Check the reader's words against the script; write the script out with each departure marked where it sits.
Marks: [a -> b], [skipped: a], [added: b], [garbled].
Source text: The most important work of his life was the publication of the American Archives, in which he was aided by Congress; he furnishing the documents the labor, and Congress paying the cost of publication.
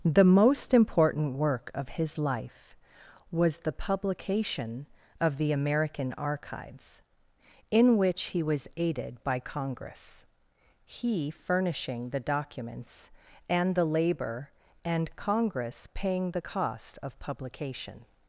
The most important work of his life was the publication of the American Archives, in which he was aided by Congress; he furnishing the documents [added: and] the labor, and Congress paying the cost of publication.